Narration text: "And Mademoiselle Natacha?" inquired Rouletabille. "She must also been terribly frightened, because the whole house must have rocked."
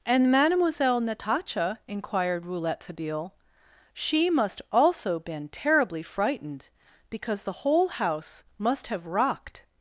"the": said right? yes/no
yes